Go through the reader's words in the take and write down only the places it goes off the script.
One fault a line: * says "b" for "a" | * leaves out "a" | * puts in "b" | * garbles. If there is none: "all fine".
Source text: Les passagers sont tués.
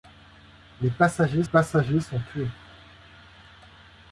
* puts in "passagers"